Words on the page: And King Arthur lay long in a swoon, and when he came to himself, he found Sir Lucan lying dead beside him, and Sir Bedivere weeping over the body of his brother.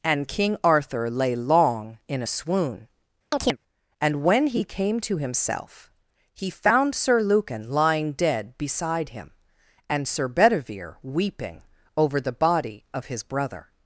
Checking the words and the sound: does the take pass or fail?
fail